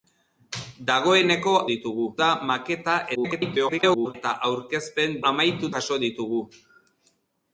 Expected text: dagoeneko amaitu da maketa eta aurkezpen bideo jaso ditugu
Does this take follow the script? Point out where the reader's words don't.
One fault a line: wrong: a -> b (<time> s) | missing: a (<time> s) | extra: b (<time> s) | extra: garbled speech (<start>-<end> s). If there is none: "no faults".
wrong: amaitu -> ditugu (1.7 s)
extra: garbled speech (3.1-4.2 s)
wrong: bideo -> amaitu (5.3 s)